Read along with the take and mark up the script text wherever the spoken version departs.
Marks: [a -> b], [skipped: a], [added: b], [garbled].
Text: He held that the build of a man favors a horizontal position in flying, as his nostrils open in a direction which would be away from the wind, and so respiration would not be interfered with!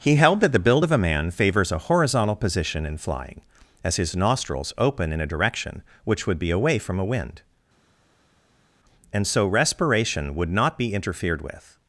He held that the build of a man favors a horizontal position in flying, as his nostrils open in a direction which would be away from [the -> a] wind, and so respiration would not be interfered with!